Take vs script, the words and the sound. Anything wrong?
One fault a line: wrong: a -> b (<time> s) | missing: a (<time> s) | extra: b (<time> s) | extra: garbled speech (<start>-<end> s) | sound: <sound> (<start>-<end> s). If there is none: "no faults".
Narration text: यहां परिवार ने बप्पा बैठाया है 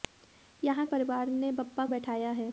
no faults